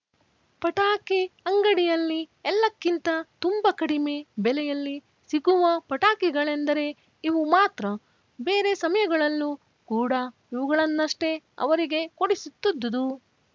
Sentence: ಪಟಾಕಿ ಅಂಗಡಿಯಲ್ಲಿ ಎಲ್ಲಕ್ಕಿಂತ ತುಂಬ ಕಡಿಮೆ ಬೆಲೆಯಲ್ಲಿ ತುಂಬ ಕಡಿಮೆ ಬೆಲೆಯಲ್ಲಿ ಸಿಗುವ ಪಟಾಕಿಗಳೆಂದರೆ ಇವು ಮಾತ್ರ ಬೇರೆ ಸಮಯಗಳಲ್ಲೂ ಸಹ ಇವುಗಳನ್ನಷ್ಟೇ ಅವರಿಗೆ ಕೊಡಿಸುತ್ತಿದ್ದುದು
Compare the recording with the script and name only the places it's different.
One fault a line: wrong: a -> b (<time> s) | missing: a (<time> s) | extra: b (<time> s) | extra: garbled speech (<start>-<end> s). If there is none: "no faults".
missing: ತುಂಬ ಕಡಿಮೆ ಬೆಲೆಯಲ್ಲಿ (5.0 s)
wrong: ಸಹ -> ಕೂಡ (9.9 s)